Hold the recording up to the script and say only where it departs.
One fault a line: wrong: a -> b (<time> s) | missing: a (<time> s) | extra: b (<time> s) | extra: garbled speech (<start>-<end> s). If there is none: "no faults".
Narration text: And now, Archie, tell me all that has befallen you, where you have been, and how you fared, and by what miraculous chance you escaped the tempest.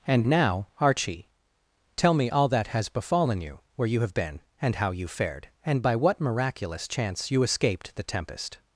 no faults